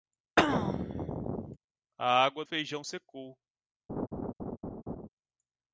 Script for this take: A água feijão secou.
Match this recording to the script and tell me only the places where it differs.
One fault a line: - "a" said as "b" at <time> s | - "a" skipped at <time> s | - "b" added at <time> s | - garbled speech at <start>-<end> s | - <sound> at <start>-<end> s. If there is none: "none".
- throat clearing at 0.4-1.6 s
- laugh at 3.9-5.1 s